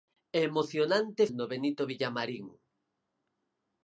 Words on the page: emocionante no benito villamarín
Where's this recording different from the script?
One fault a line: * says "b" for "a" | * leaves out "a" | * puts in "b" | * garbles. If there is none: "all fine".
all fine